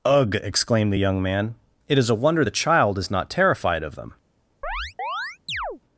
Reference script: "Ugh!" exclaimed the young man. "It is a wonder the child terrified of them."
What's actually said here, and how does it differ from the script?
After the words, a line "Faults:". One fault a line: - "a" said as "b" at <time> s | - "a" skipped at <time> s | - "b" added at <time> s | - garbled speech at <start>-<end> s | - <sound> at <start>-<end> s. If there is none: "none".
"Ugh!" exclaimed the young man. "It is a wonder the child is not terrified of them."
Faults:
- "is not" added at 3.0 s
- chirp at 4.6-5.8 s